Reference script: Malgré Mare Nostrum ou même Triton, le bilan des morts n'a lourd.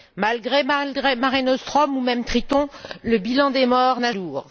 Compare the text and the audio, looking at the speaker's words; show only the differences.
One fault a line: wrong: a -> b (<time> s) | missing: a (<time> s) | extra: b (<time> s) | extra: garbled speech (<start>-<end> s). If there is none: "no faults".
no faults